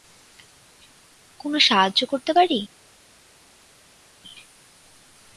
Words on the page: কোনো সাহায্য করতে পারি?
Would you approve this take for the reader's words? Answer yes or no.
yes